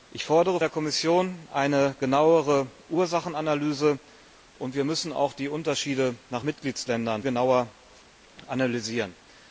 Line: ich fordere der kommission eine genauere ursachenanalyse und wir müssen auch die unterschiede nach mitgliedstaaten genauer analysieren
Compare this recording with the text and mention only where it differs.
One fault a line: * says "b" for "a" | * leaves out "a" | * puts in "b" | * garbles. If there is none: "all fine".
all fine